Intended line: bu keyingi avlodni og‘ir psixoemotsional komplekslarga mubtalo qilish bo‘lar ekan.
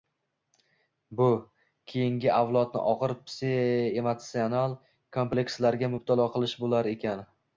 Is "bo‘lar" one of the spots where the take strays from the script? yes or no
no